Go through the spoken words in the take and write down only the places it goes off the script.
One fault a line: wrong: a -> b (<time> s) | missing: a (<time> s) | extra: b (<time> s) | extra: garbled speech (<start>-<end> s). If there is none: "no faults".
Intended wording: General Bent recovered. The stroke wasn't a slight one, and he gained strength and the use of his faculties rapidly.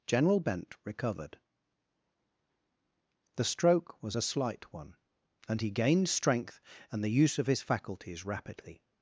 wrong: wasn't -> was (4.0 s)